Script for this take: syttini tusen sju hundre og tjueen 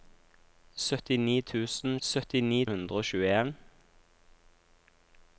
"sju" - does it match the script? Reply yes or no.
no